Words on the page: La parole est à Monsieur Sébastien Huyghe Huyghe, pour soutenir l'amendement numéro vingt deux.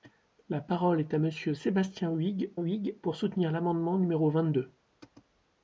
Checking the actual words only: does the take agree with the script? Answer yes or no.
yes